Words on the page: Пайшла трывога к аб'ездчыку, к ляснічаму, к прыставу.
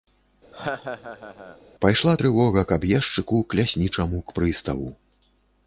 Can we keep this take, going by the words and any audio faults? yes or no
no